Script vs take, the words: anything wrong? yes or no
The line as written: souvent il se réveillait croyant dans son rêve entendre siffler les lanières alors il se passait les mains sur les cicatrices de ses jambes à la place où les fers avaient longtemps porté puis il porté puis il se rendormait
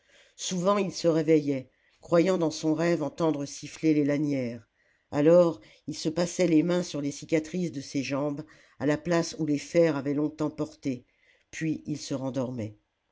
yes